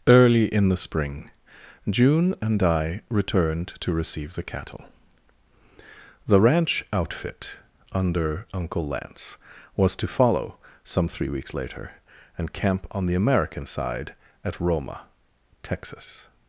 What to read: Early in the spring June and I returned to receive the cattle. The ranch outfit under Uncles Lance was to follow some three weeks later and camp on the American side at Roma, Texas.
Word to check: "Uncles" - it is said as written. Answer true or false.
false